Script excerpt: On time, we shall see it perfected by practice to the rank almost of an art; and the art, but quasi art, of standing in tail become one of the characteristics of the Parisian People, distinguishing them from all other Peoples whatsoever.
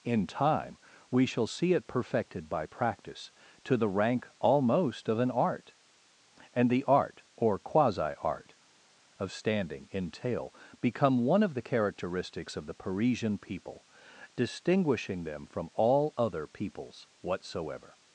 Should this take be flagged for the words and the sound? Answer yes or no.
yes